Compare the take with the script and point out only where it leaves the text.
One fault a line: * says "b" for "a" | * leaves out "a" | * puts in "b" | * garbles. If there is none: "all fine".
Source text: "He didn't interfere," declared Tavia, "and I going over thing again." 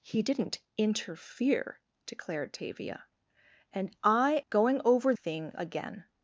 all fine